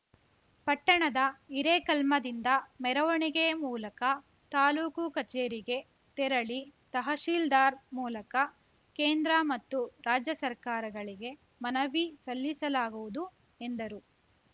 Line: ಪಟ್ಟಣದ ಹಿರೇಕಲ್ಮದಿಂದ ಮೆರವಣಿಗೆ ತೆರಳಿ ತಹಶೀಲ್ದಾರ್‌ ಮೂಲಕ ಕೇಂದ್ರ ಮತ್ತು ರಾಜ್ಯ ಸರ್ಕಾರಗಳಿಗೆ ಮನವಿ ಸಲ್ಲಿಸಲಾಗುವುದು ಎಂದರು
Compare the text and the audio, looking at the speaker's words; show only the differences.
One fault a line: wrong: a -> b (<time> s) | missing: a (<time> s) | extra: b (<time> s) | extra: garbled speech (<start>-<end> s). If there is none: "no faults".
extra: ಮೂಲಕ ತಾಲೂಕು ಕಚೇರಿಗೆ (3.6 s)